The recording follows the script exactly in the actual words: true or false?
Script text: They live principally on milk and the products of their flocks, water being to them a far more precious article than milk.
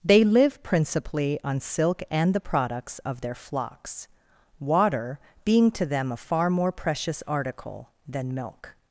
false